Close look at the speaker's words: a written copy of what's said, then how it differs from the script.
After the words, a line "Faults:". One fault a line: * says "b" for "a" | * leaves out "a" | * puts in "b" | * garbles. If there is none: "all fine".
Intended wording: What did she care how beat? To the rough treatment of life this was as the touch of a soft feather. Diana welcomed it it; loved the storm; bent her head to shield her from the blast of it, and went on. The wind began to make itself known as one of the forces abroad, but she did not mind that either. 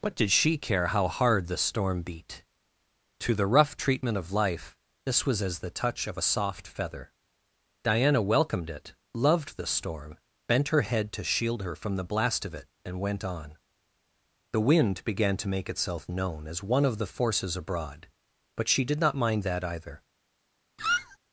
What did she care how hard the storm beat? To the rough treatment of life this was as the touch of a soft feather. Diana welcomed it; loved the storm; bent her head to shield her from the blast of it, and went on. The wind began to make itself known as one of the forces abroad, but she did not mind that either.
Faults:
* puts in "hard the storm"
* leaves out "it"